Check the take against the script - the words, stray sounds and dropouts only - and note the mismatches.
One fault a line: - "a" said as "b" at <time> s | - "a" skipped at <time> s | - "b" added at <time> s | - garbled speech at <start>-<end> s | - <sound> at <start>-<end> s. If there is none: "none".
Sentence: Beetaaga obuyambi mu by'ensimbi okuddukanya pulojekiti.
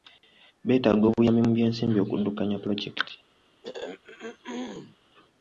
- throat clearing at 3.6-5.0 s